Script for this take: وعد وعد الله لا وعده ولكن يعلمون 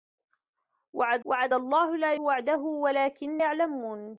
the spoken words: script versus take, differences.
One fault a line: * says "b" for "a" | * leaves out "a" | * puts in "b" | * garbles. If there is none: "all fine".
all fine